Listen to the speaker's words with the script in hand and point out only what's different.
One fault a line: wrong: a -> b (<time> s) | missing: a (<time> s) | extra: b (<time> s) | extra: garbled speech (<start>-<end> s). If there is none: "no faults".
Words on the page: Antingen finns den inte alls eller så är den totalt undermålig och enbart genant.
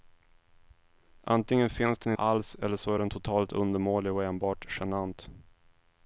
missing: inte (2.1 s)